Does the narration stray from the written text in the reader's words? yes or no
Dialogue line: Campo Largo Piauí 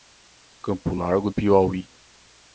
no